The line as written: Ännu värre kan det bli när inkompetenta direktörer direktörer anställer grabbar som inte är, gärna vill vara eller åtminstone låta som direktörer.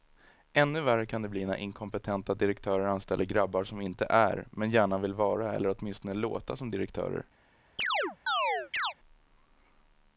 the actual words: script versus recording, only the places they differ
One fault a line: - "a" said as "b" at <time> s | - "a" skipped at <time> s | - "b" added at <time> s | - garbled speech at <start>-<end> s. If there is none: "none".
- "direktörer" skipped at 2.9 s
- "men" added at 4.5 s